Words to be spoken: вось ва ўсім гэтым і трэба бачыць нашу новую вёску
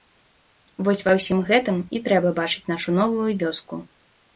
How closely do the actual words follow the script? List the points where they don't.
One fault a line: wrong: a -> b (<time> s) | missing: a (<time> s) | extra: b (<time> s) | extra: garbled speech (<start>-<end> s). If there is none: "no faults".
no faults